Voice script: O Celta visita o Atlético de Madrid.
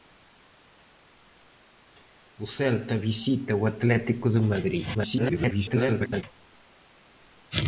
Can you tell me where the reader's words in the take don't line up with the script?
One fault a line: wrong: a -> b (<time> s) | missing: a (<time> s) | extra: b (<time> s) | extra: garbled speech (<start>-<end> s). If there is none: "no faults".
extra: garbled speech (4.9-6.2 s)